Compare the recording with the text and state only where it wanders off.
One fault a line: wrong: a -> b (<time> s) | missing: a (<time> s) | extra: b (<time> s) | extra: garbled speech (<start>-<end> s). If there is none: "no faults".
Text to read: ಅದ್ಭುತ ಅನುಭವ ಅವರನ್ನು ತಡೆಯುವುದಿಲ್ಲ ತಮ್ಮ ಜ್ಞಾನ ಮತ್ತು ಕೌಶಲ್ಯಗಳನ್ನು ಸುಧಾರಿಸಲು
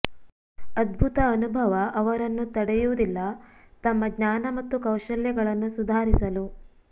no faults